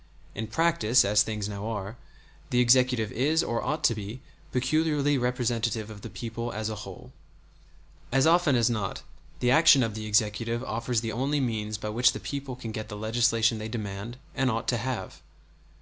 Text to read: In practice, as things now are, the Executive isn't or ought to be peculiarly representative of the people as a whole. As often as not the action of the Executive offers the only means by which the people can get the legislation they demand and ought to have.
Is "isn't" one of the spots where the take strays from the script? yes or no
yes